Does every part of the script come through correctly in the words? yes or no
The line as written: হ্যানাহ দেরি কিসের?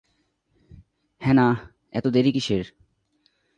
no